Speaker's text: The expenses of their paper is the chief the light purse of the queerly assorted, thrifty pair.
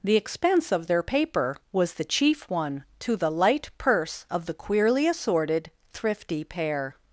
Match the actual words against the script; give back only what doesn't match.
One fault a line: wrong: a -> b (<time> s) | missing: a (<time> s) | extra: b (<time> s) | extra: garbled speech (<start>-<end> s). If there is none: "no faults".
wrong: expenses -> expense (0.1 s)
wrong: is -> was (1.7 s)
extra: one to (2.5 s)